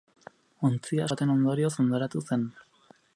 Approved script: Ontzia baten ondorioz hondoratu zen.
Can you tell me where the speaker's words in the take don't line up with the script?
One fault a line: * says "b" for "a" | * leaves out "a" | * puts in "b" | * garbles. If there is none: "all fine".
all fine